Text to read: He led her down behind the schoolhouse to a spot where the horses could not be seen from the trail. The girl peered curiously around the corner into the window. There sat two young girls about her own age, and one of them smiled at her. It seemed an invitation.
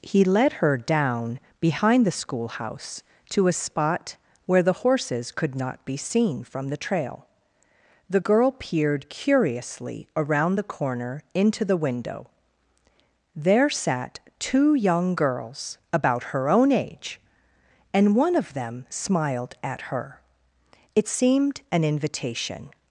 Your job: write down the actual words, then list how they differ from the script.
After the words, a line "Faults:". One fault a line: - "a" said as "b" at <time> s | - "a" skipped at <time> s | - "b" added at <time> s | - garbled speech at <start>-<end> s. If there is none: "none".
He led her down behind the schoolhouse to a spot where the horses could not be seen from the trail. The girl peered curiously around the corner into the window. There sat two young girls about her own age, and one of them smiled at her. It seemed an invitation.
Faults:
none